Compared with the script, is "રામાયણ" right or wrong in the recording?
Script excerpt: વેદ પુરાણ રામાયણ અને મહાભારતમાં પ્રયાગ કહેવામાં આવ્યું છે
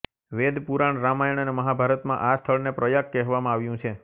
right